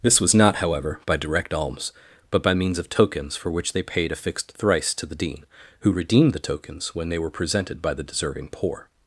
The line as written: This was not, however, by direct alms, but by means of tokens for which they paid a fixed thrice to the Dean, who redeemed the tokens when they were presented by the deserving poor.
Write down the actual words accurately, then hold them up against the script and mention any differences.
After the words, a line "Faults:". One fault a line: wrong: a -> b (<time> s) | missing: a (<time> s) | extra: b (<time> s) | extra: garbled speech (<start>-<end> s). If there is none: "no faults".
This was not, however, by direct alms, but by means of tokens for which they paid a fixed thrice to the Dean, who redeemed the tokens when they were presented by the deserving poor.
Faults:
no faults